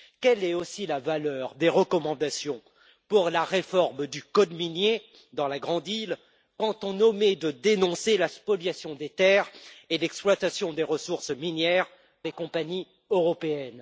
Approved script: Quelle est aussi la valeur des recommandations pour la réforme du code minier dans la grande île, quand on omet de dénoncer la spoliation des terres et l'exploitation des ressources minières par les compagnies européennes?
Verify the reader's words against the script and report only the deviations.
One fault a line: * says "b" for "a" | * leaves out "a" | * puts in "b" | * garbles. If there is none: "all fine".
* leaves out "par"